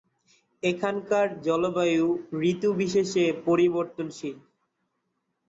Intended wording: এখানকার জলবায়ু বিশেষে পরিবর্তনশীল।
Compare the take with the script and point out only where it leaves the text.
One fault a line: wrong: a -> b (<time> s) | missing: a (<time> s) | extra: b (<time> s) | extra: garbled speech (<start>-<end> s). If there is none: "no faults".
extra: ঋতু (2.4 s)